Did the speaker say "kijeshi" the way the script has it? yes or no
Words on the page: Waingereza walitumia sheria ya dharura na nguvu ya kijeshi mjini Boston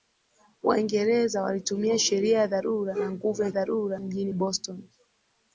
no